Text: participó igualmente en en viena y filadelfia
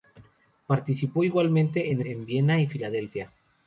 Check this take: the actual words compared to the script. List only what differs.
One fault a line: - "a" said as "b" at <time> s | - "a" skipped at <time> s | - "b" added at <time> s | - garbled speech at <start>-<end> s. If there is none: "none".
none